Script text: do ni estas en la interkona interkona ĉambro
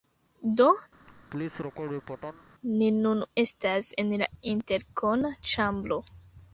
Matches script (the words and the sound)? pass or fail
fail